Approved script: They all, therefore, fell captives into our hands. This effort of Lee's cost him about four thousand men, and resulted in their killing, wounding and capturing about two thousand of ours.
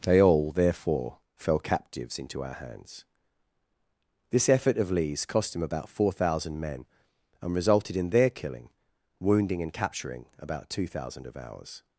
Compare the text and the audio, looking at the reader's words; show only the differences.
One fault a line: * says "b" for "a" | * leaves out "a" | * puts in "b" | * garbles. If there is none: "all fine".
all fine